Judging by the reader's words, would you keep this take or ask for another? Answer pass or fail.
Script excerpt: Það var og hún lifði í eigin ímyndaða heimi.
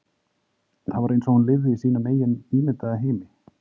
fail